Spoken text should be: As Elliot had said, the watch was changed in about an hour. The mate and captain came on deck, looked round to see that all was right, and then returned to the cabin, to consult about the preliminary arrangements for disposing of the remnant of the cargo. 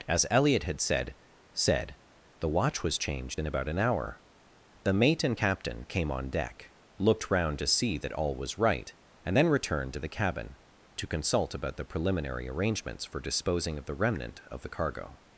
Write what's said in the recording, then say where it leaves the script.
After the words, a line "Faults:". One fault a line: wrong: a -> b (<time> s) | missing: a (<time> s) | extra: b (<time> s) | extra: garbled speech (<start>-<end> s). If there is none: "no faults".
As Elliot had said said, the watch was changed in about an hour. The mate and captain came on deck, looked round to see that all was right, and then returned to the cabin, to consult about the preliminary arrangements for disposing of the remnant of the cargo.
Faults:
extra: said (1.5 s)